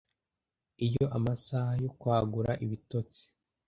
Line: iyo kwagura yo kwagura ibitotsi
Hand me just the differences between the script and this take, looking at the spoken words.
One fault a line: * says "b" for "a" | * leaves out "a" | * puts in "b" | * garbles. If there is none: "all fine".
* says "amasaha" for "kwagura"